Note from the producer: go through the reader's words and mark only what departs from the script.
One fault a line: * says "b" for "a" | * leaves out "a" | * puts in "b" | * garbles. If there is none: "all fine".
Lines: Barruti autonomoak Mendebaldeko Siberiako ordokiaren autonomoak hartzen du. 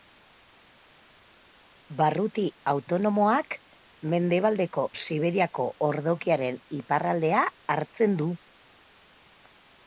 * says "iparraldea" for "autonomoak"